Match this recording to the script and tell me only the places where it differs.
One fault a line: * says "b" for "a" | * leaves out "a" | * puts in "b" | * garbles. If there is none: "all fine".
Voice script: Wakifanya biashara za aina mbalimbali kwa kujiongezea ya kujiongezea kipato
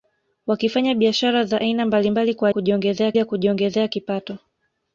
all fine